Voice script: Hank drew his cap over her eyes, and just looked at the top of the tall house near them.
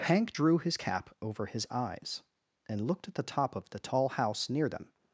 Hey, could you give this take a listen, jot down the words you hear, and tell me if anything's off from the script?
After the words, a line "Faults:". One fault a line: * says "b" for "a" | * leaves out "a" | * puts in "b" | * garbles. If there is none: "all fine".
Hank drew his cap over his eyes, and looked at the top of the tall house near them.
Faults:
* says "his" for "her"
* leaves out "just"